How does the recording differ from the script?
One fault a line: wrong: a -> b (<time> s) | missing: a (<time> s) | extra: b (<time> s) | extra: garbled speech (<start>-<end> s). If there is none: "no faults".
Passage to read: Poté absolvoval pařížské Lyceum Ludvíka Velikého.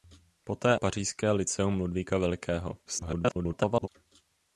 missing: absolvoval (0.8 s)
extra: garbled speech (2.9-3.9 s)